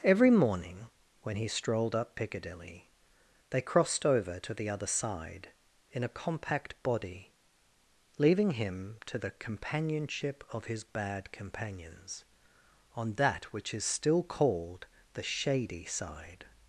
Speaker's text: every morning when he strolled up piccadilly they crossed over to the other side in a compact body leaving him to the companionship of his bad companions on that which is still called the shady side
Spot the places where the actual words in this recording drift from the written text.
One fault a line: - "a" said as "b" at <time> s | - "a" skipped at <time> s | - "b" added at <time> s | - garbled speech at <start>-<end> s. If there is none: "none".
none